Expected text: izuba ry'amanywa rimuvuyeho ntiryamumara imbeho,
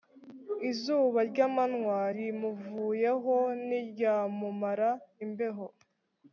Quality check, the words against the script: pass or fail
pass